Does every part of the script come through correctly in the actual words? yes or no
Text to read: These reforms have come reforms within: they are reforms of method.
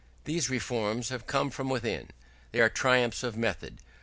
no